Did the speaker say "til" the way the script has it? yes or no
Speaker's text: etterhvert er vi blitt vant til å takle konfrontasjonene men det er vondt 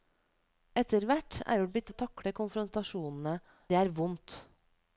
no